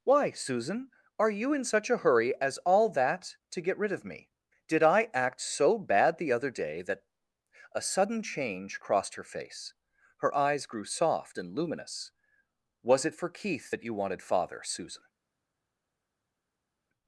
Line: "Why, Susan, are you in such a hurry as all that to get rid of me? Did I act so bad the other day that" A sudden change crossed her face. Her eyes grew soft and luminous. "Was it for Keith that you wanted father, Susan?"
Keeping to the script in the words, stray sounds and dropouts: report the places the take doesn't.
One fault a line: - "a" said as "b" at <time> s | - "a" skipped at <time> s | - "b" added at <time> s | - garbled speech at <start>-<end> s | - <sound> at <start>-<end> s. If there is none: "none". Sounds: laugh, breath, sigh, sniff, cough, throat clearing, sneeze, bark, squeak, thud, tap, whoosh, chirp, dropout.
none